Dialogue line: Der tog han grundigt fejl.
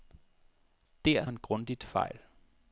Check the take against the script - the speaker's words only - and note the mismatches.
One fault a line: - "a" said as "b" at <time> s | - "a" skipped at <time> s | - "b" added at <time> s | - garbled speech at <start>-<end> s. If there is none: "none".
- "tog" skipped at 1.2 s